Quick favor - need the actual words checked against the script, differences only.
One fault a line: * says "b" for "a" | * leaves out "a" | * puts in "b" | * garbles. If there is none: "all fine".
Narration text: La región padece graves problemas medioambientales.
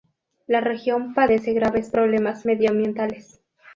all fine